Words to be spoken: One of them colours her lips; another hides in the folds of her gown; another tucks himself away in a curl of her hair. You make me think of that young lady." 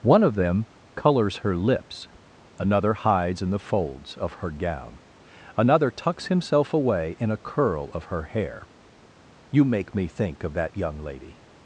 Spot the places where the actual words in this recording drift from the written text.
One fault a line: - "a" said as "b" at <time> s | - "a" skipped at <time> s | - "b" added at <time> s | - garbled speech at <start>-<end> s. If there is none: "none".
none